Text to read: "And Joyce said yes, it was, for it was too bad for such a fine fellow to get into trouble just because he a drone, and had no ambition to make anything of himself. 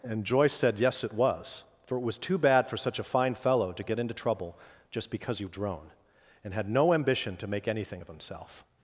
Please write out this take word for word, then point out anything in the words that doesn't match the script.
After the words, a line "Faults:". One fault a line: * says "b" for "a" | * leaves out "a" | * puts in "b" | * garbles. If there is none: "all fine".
"And Joyce said yes, it was, for it was too bad for such a fine fellow to get into trouble just because he a drone, and had no ambition to make anything of himself.
Faults:
all fine